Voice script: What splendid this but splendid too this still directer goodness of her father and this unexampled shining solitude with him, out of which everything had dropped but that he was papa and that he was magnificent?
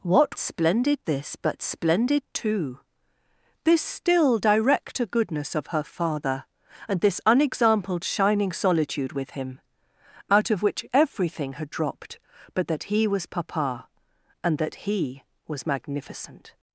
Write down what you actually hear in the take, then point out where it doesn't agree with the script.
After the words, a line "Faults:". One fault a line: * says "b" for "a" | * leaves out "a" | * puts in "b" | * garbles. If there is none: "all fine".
What splendid this but splendid too this still directer goodness of her father and this unexampled shining solitude with him, out of which everything had dropped but that he was papa and that he was magnificent?
Faults:
all fine